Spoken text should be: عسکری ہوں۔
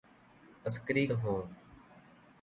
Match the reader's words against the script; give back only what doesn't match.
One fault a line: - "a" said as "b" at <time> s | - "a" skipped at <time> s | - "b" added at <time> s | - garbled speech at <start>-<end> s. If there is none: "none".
none